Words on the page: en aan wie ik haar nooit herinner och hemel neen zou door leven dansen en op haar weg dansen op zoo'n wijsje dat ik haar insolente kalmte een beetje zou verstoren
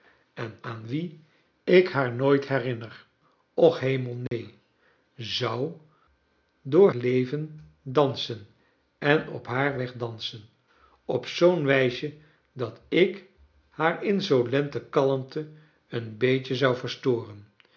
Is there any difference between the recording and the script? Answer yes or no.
no